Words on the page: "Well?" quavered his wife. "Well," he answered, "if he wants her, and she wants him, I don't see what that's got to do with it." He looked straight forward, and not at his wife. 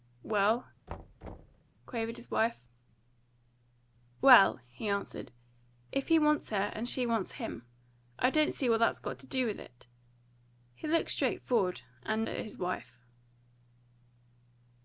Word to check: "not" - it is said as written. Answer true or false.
false